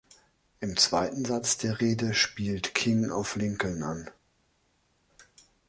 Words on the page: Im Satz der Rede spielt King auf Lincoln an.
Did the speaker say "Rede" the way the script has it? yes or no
yes